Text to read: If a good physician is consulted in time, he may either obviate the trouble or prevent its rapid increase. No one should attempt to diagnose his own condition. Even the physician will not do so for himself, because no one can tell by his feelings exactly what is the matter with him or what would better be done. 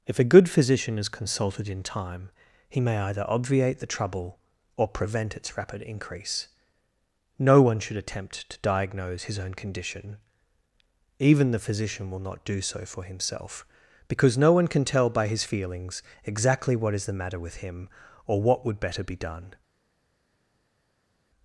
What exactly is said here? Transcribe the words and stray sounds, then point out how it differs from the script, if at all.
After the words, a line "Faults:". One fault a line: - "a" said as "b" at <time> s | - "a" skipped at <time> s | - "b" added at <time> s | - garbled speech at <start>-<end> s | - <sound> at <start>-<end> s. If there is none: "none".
If a good physician is consulted in time, he may either obviate the trouble or prevent its rapid increase. No one should attempt to diagnose his own condition. Even the physician will not do so for himself, because no one can tell by his feelings exactly what is the matter with him or what would better be done.
Faults:
none